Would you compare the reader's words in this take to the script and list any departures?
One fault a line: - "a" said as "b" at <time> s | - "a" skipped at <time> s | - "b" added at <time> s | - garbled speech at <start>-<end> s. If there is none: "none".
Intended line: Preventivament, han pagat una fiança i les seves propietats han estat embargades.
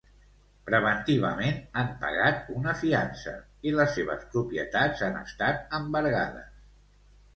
none